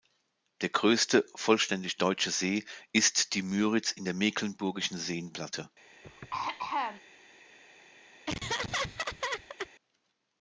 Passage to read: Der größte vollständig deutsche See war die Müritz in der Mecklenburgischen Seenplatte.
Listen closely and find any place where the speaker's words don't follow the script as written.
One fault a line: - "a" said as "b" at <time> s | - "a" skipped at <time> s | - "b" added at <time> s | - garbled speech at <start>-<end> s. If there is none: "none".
- "war" said as "ist" at 2.9 s